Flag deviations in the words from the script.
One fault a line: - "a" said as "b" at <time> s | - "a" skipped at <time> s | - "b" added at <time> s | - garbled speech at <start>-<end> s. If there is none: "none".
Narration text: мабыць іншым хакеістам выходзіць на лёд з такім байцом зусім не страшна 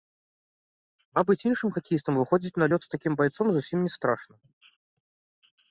none